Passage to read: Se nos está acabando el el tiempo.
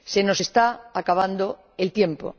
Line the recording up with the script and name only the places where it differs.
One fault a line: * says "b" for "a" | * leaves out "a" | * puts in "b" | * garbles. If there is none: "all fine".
* leaves out "el"